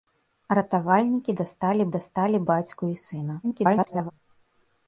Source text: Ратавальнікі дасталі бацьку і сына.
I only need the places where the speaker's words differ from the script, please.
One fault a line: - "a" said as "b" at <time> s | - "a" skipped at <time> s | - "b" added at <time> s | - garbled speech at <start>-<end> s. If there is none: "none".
- "дасталі" added at 2.0 s
- garbled speech at 3.4-4.1 s